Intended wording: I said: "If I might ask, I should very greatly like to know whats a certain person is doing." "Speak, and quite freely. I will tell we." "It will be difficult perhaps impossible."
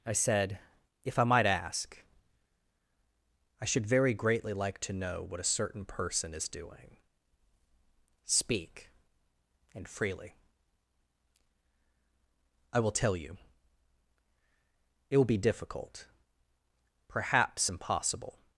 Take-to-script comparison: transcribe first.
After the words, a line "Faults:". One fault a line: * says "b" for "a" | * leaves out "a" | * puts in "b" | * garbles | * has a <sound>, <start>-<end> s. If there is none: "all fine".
I said: "If I might ask, I should very greatly like to know what a certain person is doing." "Speak, and freely. I will tell you." "It will be difficult perhaps impossible."
Faults:
* says "what" for "whats"
* leaves out "quite"
* says "you" for "we"